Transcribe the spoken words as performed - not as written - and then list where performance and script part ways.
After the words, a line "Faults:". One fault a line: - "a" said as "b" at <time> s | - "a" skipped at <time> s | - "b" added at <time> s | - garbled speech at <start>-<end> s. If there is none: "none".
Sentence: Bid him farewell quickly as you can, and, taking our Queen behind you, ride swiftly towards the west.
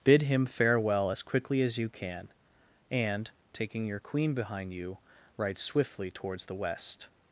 Bid him farewell as quickly as you can, and, taking your Queen behind you, ride swiftly towards the west.
Faults:
- "as" added at 1.1 s
- "our" said as "your" at 3.9 s